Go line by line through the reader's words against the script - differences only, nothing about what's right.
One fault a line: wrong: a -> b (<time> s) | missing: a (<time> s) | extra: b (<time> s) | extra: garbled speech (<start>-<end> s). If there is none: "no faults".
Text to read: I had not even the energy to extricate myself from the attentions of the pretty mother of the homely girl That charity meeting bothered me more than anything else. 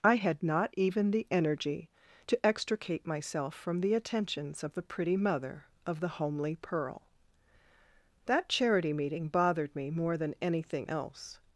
wrong: girl -> pearl (6.5 s)